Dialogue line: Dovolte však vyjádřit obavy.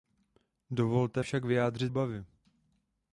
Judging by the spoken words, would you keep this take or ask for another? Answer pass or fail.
pass